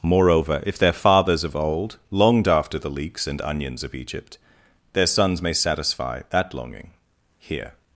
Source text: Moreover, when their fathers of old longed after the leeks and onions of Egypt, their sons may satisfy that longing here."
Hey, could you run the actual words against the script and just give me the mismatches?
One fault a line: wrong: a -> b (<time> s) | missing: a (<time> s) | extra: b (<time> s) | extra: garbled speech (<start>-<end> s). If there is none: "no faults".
wrong: when -> if (0.7 s)